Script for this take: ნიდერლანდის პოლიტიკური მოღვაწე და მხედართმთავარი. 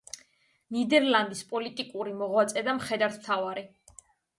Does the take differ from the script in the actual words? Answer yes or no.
no